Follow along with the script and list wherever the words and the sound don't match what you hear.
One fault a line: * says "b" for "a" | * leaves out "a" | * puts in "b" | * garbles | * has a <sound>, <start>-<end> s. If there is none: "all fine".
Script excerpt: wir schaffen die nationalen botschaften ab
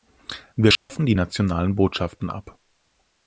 * has a dropout, 0.8-0.9 s